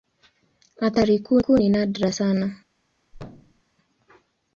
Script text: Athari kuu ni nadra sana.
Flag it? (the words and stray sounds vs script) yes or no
yes